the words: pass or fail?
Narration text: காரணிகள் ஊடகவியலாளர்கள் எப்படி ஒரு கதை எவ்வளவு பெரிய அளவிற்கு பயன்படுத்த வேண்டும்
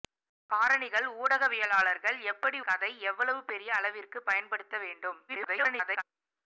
fail